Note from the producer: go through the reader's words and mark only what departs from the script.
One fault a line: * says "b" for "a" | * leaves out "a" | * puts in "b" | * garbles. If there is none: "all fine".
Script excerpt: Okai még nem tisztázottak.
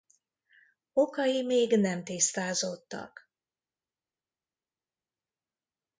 all fine